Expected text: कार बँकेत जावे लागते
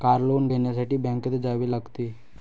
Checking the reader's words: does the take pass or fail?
fail